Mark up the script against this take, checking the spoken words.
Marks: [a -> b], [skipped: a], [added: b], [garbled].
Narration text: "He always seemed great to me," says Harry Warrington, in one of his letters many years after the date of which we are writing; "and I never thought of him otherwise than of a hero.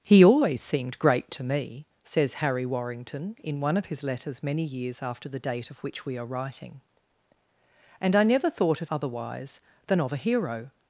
"He always seemed great to me," says Harry Warrington, in one of his letters many years after the date of which we are writing; "and I never thought of [skipped: him] otherwise than of a hero.